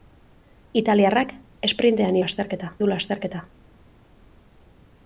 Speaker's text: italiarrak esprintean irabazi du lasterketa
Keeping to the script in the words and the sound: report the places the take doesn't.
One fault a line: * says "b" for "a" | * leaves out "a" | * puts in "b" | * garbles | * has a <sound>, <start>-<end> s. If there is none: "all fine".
* says "lasterketa" for "irabazi"